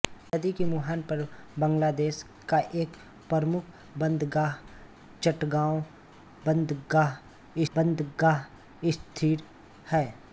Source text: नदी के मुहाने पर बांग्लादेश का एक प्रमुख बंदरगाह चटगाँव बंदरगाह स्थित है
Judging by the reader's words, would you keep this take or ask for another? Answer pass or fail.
fail